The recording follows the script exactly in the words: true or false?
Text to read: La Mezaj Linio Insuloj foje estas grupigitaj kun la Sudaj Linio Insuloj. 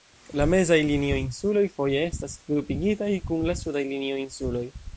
true